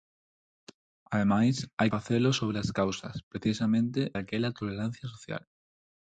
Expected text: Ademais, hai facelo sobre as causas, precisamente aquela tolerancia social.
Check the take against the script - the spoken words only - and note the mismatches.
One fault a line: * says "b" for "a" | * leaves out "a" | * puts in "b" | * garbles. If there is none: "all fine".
all fine